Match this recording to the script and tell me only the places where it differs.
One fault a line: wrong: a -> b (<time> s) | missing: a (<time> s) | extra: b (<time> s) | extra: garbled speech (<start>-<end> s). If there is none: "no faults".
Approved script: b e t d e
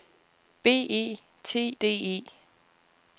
no faults